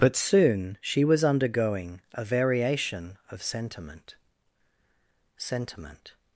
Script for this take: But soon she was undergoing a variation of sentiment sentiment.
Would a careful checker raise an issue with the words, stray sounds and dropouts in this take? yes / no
no